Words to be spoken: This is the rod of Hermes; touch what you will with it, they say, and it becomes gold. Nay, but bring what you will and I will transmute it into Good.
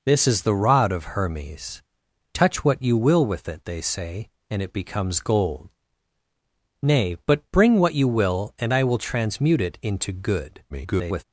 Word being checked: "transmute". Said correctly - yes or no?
yes